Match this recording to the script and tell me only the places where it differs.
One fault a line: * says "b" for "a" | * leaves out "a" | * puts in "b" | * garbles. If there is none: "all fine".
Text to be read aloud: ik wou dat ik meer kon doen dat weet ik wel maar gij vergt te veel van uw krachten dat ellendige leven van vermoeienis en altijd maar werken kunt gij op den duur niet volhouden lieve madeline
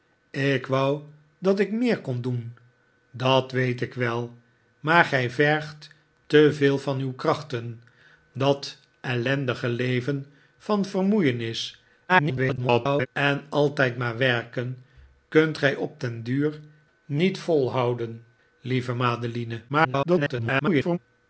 * garbles
* garbles